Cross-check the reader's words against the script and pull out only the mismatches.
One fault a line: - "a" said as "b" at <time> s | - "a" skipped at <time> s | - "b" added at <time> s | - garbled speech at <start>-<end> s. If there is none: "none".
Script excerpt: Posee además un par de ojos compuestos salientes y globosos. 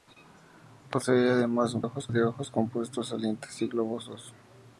- "par" said as "ojos" at 1.8 s